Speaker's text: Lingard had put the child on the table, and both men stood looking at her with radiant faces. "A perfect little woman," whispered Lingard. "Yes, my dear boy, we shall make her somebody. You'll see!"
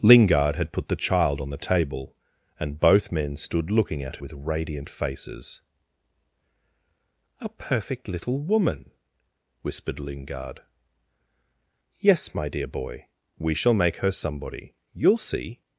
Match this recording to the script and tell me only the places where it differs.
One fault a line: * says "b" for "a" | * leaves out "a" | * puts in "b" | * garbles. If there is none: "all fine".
* leaves out "her"